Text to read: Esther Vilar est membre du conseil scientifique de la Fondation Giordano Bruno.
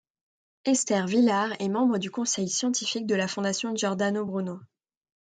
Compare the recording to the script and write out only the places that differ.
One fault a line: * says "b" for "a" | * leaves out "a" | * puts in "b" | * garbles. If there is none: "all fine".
all fine